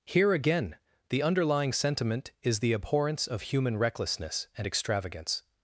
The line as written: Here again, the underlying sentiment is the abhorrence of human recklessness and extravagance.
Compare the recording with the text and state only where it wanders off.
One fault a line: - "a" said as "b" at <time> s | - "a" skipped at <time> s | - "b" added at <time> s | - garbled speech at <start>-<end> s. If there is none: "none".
none